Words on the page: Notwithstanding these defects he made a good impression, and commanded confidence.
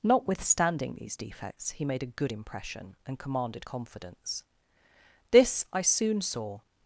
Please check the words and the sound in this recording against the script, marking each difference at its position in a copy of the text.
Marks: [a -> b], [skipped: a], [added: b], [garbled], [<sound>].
Notwithstanding these defects he made a good impression, and commanded confidence. [added: This I soon saw]